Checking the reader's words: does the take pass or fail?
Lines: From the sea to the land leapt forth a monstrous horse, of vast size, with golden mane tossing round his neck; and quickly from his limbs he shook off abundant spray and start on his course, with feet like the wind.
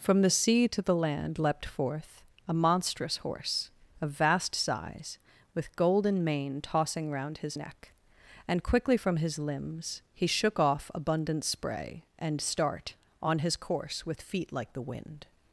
pass